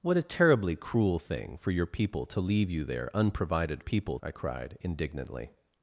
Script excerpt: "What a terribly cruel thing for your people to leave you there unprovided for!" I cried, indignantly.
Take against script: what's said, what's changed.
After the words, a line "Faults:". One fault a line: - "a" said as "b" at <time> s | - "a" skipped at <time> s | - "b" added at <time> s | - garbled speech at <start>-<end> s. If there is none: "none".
"What a terribly cruel thing for your people to leave you there unprovided people!" I cried, indignantly.
Faults:
- "for" said as "people" at 3.8 s